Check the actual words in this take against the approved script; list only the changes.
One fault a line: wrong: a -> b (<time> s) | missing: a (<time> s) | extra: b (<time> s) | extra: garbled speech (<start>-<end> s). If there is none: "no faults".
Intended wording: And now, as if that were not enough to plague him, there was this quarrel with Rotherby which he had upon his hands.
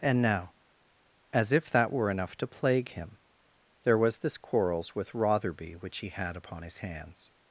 missing: not (2.1 s)
wrong: quarrel -> quarrels (4.4 s)